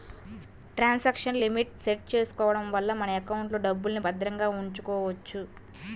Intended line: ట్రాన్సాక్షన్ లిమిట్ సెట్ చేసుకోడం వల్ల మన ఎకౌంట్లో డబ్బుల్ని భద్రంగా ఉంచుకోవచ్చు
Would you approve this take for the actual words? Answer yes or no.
yes